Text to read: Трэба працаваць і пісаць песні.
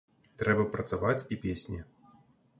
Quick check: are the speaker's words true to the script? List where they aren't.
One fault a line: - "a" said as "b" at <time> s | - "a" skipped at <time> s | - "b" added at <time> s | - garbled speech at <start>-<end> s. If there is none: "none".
- "пісаць" skipped at 1.4 s